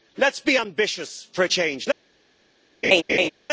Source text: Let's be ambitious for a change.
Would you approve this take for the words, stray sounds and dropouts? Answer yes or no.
no